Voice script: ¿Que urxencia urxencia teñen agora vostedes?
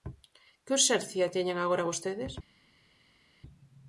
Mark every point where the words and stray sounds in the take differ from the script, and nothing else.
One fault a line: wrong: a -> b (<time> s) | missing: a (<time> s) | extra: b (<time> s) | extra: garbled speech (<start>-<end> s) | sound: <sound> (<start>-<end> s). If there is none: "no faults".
missing: urxencia (1.3 s)